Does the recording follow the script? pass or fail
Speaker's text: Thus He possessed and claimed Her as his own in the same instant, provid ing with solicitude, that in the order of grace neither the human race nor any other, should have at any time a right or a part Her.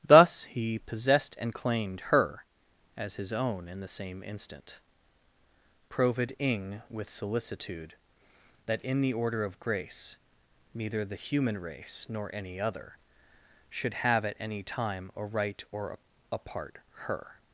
pass